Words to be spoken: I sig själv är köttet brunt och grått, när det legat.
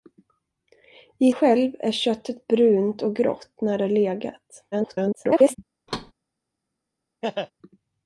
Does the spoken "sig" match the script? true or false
false